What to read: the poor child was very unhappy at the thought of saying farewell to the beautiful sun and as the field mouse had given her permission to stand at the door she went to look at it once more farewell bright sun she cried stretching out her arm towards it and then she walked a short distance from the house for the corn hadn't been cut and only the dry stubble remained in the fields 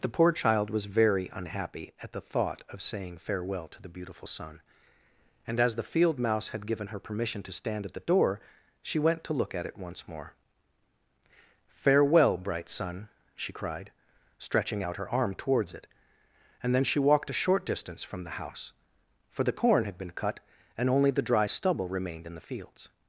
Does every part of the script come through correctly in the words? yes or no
no